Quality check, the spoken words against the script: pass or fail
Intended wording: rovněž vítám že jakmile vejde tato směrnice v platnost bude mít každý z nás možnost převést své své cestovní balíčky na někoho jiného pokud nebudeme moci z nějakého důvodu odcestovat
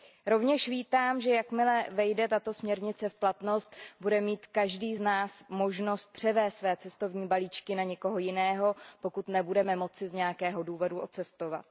fail